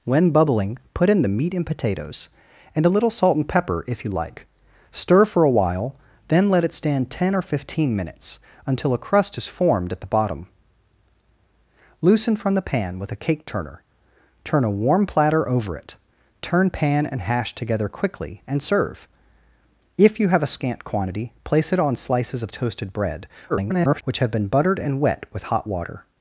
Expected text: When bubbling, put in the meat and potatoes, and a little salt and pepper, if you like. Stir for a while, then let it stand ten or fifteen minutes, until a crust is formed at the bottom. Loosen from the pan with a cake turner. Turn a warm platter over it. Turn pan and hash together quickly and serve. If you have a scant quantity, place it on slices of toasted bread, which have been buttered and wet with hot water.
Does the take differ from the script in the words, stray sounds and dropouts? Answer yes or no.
yes